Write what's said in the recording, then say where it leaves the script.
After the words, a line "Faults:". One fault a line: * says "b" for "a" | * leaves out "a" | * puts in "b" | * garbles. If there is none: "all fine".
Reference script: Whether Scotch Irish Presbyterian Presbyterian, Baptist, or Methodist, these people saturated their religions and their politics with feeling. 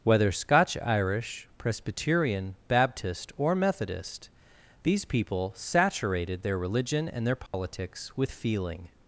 Whether Scotch Irish Presbyterian, Baptist, or Methodist, these people saturated their religion and their politics with feeling.
Faults:
* leaves out "Presbyterian"
* says "religion" for "religions"